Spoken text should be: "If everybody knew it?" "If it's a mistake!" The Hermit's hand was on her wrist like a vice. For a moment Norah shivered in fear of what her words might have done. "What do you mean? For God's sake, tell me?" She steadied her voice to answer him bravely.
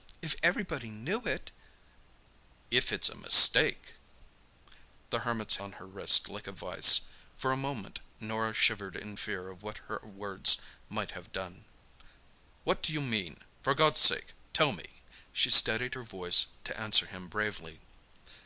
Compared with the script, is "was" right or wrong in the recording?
wrong